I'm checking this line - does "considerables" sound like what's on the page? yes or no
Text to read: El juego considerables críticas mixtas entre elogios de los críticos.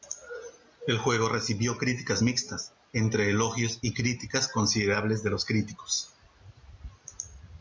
no